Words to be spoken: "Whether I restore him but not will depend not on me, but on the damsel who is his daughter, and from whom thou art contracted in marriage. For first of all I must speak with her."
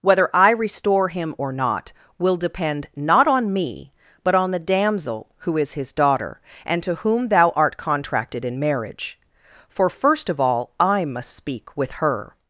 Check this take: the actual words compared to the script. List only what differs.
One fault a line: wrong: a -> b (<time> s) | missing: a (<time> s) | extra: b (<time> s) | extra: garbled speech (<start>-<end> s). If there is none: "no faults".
wrong: but -> or (1.3 s)
wrong: from -> to (6.8 s)